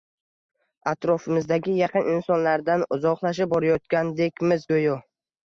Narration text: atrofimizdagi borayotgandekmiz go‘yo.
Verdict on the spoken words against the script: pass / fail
fail